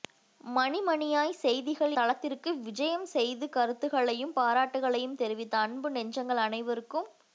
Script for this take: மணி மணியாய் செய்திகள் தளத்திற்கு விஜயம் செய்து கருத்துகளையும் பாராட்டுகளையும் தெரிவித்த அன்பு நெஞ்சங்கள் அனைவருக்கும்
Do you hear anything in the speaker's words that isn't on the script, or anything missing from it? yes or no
no